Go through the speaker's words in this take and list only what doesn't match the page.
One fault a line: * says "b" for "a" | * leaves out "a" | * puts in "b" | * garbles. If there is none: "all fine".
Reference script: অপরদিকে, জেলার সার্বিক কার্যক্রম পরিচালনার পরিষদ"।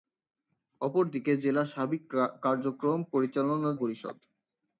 all fine